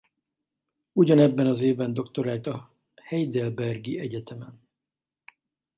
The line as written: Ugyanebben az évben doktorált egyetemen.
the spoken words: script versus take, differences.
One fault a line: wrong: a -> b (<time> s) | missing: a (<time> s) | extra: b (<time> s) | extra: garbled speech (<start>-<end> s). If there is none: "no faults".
extra: a heidelbergi (2.5 s)